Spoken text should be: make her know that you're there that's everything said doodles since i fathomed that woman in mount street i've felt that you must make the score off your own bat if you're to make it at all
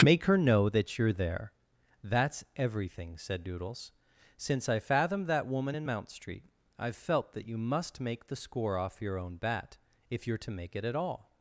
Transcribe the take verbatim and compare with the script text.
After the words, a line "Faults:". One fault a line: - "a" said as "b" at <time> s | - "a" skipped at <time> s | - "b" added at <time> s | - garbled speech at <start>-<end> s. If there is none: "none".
make her know that you're there that's everything said doodles since i fathomed that woman in mount street i've felt that you must make the score off your own bat if you're to make it at all
Faults:
none